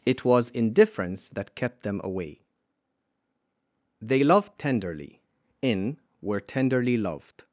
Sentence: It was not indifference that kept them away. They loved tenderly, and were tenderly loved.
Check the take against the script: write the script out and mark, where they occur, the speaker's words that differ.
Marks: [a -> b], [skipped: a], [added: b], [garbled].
It was [skipped: not] indifference that kept them away. They loved tenderly, [and -> in] were tenderly loved.